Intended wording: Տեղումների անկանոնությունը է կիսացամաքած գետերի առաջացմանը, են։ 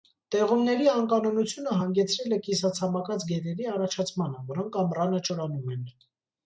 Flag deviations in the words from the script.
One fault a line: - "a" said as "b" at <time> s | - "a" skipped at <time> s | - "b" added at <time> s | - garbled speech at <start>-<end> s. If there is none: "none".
- "հանգեցրել" added at 1.8 s
- "որոնք ամռանը չորանում" added at 4.6 s